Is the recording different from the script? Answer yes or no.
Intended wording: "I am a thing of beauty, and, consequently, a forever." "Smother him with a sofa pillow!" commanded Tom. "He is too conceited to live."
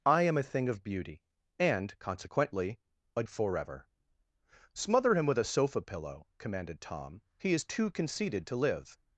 no